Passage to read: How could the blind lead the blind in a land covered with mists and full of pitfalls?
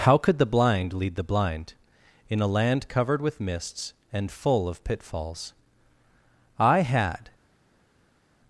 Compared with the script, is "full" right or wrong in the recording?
right